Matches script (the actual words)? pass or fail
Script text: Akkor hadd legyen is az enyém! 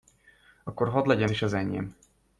pass